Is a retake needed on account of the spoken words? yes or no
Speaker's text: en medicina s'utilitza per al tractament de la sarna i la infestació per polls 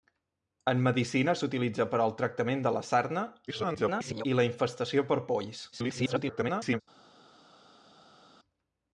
yes